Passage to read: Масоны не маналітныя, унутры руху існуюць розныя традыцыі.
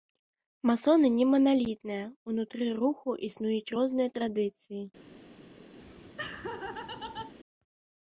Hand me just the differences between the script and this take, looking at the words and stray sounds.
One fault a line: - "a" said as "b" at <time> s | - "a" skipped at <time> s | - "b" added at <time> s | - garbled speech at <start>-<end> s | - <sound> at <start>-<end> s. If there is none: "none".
- laugh at 5.8-7.3 s